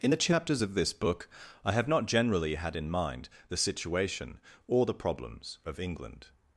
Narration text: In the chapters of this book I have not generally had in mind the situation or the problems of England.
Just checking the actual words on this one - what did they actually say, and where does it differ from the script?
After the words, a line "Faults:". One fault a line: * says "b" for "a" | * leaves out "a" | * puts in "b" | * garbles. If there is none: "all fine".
In the chapters of this book I have not generally had in mind the situation or the problems of England.
Faults:
all fine